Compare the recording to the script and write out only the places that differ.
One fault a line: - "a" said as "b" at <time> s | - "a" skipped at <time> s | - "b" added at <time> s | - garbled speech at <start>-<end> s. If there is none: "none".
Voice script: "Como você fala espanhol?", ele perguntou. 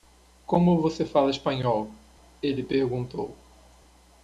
none